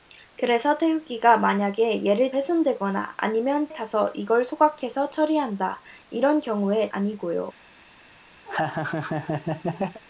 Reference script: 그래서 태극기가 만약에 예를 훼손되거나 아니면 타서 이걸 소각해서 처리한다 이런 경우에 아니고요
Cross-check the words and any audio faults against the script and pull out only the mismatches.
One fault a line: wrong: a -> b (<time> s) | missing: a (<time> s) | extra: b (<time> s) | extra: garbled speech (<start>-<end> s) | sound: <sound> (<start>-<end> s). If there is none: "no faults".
sound: laugh (8.5-10.0 s)